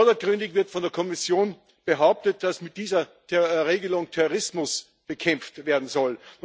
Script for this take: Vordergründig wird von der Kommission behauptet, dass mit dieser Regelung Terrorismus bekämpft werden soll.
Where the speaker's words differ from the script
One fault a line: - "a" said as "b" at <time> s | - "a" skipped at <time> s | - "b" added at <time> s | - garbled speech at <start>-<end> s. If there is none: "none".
none